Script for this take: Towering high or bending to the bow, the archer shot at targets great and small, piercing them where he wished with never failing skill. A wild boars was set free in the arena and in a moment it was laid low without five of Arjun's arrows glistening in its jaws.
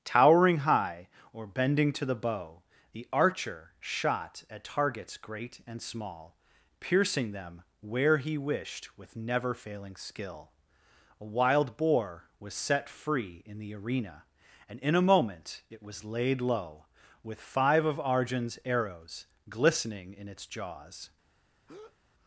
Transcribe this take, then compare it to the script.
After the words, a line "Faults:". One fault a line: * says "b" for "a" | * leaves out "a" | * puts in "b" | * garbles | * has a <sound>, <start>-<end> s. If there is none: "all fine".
Towering high or bending to the bow, the archer shot at targets great and small, piercing them where he wished with never failing skill. A wild boar was set free in the arena and in a moment it was laid low with five of Arjun's arrows glistening in its jaws.
Faults:
* says "boar" for "boars"
* says "with" for "without"
* has a breath, 21.7-22.0 s